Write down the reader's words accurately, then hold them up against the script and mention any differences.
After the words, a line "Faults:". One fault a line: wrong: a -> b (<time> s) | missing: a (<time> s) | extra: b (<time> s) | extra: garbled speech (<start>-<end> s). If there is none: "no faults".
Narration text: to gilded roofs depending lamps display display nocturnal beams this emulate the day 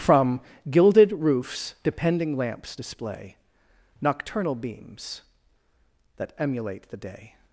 from gilded roofs depending lamps display nocturnal beams that emulate the day
Faults:
wrong: to -> from (0.0 s)
missing: display (3.3 s)
wrong: this -> that (6.2 s)